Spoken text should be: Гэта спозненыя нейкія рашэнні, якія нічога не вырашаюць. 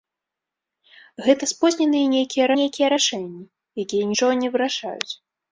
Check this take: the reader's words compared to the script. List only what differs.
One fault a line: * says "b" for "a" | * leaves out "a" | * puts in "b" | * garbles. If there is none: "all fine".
* puts in "нейкія"